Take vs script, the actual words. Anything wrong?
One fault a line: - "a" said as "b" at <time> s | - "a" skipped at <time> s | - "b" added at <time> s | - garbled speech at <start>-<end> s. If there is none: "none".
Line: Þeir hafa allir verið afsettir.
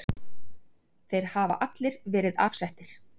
none